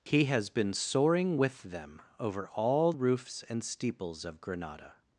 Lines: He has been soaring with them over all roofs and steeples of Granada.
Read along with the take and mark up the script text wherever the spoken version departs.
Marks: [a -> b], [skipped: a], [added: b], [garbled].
He has been soaring with them over all roofs and steeples of Granada.